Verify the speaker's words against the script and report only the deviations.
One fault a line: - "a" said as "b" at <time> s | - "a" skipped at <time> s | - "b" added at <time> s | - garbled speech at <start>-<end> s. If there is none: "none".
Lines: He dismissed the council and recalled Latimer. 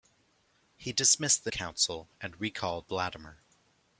none